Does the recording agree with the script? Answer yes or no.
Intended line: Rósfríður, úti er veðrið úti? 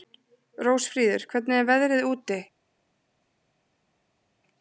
no